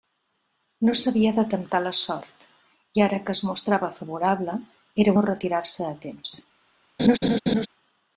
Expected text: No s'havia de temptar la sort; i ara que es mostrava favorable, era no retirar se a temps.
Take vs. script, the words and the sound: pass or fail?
fail